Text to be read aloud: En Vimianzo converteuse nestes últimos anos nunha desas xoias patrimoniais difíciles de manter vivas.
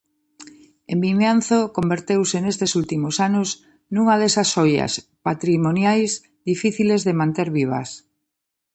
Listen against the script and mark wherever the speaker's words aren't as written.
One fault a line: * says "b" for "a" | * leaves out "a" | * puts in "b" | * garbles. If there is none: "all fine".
all fine